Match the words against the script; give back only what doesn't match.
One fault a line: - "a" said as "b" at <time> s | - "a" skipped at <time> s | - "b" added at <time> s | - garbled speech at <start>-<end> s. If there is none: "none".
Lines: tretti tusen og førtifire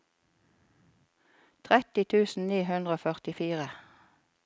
- "ni hundre" added at 2.5 s